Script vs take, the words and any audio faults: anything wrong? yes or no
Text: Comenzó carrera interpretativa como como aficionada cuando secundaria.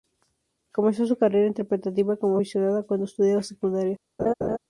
yes